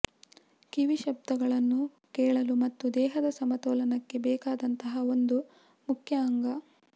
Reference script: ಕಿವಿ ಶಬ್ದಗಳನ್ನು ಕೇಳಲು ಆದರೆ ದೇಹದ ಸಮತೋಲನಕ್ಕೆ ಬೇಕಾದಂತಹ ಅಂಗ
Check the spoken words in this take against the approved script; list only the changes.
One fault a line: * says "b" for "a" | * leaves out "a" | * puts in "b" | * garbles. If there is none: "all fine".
* says "ಮತ್ತು" for "ಆದರೆ"
* puts in "ಒಂದು ಮುಖ್ಯ"